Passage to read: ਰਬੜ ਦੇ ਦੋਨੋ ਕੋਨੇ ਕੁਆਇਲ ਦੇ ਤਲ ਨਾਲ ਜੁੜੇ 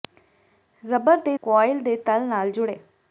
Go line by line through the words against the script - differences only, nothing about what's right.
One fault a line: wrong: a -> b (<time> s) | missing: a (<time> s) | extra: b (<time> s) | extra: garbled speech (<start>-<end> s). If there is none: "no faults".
missing: ਦੋਨੋ ਕੋਨੇ (1.4 s)